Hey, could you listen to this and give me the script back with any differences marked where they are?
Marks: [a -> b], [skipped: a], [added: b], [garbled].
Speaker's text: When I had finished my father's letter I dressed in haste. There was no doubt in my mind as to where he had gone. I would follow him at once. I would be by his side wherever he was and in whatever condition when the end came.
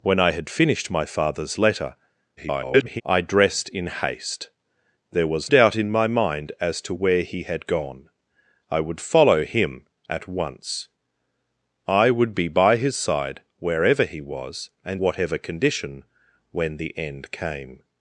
When I had finished my father's letter [garbled] I dressed in haste. There was [skipped: no] doubt in my mind as to where he had gone. I would follow him at once. I would be by his side wherever he was and [skipped: in] whatever condition when the end came.